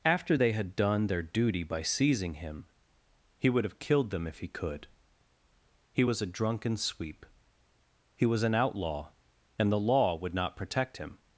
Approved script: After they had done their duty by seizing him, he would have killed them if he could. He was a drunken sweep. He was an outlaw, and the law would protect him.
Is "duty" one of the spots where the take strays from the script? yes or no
no